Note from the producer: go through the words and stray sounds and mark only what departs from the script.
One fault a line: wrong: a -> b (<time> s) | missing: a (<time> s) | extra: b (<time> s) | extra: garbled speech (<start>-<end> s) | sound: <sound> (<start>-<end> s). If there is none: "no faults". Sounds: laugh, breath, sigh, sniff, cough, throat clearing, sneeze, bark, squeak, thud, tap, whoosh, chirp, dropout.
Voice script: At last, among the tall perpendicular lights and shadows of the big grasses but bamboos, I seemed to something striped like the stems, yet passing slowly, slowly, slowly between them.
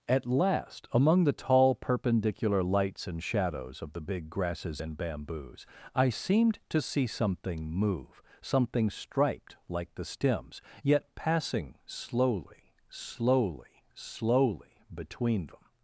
wrong: but -> and (4.8 s)
extra: see something move (6.8 s)